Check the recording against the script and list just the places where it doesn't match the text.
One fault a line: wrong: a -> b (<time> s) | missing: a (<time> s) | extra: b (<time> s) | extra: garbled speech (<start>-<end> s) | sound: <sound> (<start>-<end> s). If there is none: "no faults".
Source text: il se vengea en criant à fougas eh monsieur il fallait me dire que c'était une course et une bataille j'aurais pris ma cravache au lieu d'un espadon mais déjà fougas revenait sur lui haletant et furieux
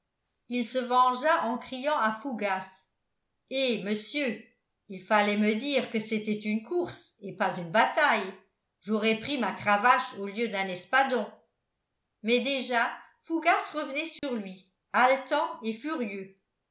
extra: pas (7.3 s)
sound: dropout (14.2-14.2 s)